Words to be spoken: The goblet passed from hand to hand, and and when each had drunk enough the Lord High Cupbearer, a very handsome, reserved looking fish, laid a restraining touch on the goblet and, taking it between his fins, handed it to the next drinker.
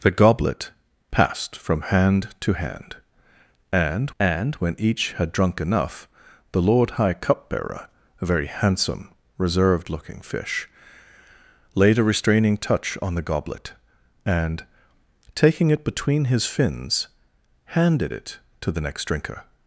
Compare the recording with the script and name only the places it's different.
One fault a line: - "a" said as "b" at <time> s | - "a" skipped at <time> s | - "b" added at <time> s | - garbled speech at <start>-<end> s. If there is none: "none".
none